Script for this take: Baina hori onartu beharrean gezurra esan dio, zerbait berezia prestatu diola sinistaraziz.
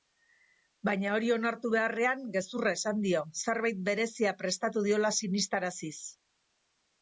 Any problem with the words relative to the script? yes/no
no